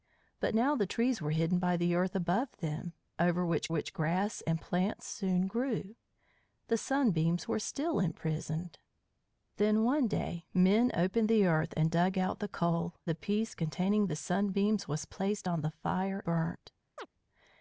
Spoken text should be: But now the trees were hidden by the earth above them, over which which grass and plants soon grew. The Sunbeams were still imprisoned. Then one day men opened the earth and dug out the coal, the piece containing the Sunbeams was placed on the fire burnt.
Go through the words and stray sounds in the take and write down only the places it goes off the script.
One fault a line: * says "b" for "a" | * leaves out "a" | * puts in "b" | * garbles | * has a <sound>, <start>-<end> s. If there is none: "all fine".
* has a chirp, 17.0-17.1 s